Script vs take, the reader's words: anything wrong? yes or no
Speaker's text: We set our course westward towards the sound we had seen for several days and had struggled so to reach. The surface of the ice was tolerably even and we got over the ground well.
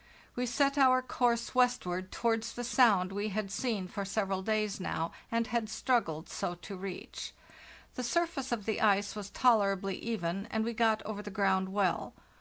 yes